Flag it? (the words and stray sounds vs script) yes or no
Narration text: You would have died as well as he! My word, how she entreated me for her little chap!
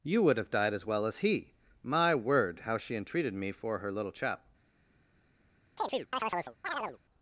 yes